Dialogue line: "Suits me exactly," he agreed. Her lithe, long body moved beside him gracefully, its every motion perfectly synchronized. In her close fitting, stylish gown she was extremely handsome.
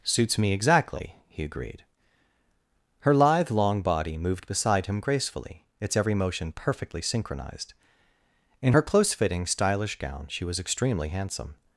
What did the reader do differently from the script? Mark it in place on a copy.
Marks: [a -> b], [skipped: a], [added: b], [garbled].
"Suits me exactly," he agreed. Her lithe, long body moved beside him gracefully, its every motion perfectly synchronized. In her close fitting, stylish gown she was extremely handsome.